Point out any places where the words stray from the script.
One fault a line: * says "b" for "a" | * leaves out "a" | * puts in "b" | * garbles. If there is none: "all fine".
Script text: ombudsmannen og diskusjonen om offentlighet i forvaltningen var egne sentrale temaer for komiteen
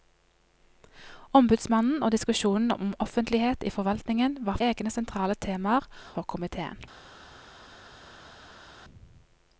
all fine